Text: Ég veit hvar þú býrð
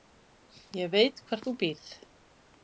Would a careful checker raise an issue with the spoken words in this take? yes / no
no